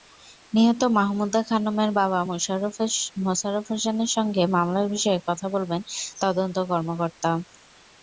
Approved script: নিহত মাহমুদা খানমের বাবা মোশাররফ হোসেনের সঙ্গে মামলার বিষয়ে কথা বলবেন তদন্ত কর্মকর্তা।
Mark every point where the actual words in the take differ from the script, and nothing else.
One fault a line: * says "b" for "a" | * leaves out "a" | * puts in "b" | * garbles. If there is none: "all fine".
all fine